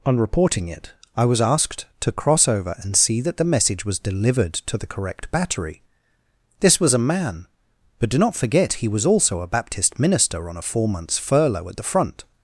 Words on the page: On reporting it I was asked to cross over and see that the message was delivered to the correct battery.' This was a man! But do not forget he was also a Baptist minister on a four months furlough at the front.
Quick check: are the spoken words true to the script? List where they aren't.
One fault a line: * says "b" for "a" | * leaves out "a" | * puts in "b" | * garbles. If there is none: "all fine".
all fine